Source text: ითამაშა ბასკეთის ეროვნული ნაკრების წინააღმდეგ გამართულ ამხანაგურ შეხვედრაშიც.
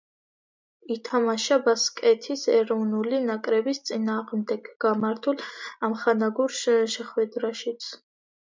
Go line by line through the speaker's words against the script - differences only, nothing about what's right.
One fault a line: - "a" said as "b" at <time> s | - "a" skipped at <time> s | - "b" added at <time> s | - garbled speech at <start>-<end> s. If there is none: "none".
none